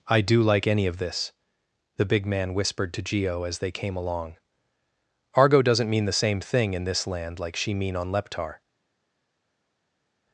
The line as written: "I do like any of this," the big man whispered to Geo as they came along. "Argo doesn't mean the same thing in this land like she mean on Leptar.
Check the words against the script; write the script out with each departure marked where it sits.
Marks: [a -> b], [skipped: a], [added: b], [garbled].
"I do like any of this," the big man whispered to Geo as they came along. "Argo doesn't mean the same thing in this land like she mean on Leptar.